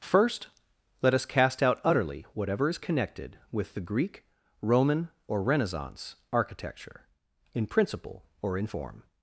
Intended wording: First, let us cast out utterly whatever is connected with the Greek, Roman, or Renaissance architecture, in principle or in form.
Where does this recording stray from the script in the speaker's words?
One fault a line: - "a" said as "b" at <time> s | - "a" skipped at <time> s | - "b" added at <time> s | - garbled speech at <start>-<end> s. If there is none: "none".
none